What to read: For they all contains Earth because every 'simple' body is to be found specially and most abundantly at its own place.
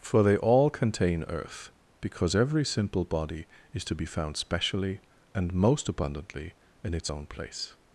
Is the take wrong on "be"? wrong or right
right